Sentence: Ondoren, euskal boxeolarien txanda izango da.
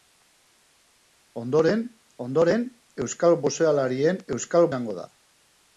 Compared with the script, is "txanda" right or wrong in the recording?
wrong